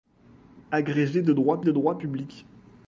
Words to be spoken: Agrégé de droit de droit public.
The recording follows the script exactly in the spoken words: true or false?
true